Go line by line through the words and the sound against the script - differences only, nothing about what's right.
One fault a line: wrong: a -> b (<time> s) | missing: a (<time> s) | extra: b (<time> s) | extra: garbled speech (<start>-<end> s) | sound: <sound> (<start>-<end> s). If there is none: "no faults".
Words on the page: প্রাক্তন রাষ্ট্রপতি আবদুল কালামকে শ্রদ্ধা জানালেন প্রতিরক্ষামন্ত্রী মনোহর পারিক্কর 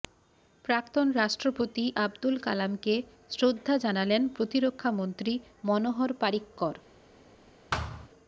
sound: thud (7.7-8.1 s)